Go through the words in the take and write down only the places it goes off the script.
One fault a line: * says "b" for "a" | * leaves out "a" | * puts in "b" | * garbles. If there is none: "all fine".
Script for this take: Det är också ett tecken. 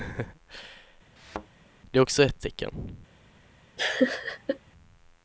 all fine